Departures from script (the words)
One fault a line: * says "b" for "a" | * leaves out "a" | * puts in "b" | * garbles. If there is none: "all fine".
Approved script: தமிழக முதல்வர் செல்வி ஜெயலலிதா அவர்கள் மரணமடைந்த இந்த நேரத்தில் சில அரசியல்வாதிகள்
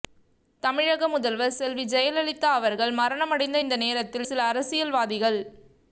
all fine